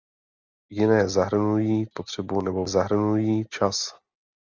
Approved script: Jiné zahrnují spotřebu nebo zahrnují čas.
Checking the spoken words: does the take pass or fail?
pass